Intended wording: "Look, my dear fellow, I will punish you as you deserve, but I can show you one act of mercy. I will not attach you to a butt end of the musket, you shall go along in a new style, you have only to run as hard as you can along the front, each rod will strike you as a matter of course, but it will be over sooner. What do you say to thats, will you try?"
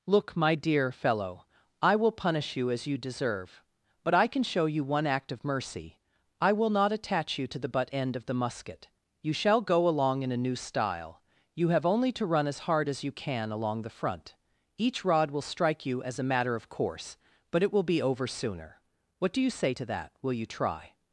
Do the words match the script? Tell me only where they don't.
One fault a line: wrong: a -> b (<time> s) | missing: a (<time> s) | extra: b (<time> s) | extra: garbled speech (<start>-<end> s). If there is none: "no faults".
wrong: a -> the (7.6 s)
wrong: thats -> that (19.9 s)